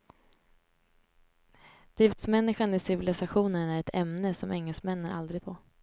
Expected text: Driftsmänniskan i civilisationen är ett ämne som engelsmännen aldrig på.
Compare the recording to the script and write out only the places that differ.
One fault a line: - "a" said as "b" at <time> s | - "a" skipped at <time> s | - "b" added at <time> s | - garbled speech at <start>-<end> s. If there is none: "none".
none